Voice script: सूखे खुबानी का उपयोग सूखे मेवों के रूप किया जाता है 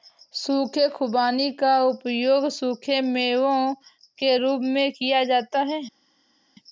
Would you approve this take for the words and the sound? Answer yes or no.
no